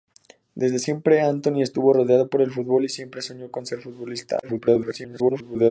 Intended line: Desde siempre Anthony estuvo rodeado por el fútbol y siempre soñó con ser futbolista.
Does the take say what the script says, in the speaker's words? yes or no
no